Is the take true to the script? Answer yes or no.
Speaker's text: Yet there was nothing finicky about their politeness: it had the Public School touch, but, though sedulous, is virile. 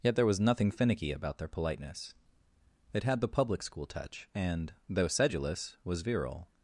no